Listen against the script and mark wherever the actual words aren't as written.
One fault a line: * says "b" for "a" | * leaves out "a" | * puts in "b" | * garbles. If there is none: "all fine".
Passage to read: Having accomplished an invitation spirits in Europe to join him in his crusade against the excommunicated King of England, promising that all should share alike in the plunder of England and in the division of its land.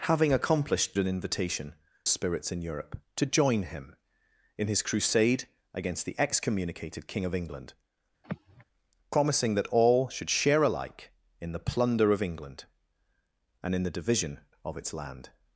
all fine